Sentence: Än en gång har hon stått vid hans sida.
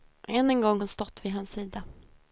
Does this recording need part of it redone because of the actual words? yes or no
yes